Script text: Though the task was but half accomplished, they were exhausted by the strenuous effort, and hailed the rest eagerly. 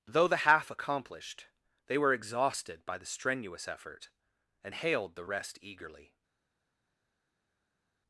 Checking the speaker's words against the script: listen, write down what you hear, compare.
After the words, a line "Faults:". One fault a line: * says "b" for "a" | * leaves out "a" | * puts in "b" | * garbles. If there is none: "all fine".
Though the half accomplished, they were exhausted by the strenuous effort, and hailed the rest eagerly.
Faults:
* leaves out "task was but"